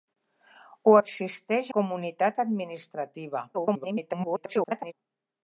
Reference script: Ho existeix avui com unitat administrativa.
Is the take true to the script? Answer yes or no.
no